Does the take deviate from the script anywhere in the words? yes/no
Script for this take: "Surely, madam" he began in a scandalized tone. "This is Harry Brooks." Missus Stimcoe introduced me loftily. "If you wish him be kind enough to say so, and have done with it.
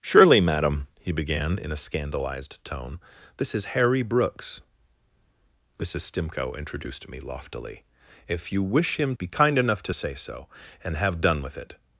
no